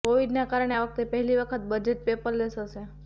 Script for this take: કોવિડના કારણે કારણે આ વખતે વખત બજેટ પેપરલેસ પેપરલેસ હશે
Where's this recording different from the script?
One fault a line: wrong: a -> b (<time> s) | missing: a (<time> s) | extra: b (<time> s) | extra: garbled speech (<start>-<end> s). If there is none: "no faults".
missing: કારણે (0.8 s)
extra: પહેલી (1.1 s)
missing: પેપરલેસ (2.6 s)